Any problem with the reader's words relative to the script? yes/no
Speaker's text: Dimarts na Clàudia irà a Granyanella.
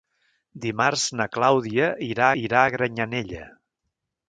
yes